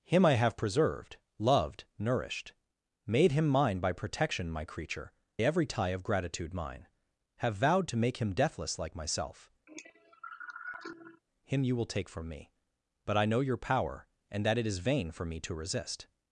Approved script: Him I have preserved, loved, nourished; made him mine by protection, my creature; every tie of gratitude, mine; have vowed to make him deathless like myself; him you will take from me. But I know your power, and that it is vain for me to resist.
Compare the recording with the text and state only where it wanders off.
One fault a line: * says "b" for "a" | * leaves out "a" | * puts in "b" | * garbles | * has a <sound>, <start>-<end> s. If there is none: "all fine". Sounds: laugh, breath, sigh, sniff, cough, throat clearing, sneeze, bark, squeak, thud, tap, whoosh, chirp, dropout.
* has a cough, 9.7-11.2 s